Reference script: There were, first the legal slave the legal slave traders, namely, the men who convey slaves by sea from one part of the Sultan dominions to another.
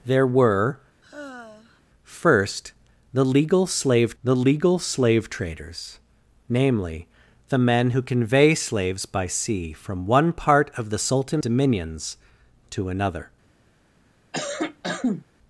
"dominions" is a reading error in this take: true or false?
false